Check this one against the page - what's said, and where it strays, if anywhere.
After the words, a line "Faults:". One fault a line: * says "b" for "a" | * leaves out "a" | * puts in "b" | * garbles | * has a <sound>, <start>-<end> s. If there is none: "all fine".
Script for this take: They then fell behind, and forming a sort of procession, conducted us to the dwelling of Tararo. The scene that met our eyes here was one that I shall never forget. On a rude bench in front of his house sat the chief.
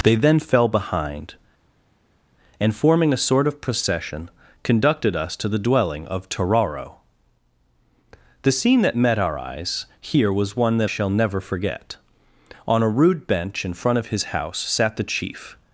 They then fell behind, and forming a sort of procession, conducted us to the dwelling of Tararo. The scene that met our eyes here was one that shall never forget. On a rude bench in front of his house sat the chief.
Faults:
* leaves out "I"